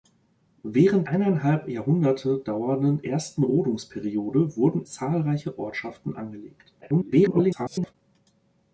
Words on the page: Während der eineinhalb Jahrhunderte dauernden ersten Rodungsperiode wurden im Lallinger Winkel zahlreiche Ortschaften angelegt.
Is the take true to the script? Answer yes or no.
no